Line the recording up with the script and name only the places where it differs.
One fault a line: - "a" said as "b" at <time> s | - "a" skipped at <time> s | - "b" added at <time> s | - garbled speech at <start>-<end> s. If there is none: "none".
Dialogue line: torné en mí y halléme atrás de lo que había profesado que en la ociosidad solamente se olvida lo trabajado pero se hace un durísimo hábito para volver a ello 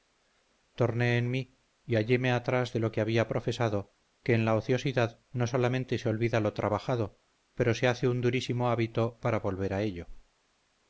- "no" added at 5.3 s